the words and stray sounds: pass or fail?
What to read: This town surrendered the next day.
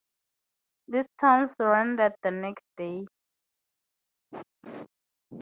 pass